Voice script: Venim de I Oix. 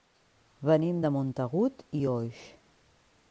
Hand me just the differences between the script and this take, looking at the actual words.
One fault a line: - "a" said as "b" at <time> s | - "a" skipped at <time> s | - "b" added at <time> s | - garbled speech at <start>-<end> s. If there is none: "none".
- "Montagut" added at 1.2 s